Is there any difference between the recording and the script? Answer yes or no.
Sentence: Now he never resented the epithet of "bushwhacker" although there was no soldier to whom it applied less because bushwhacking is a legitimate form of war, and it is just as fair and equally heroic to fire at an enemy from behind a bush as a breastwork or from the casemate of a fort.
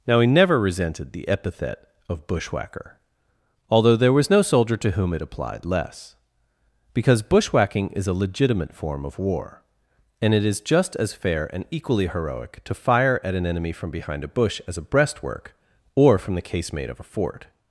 no